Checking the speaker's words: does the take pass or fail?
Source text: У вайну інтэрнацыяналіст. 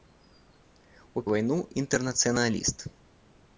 pass